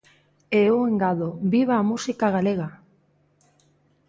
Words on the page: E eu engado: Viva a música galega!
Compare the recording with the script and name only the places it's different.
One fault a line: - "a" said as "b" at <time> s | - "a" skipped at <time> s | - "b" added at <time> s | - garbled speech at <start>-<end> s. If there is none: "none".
none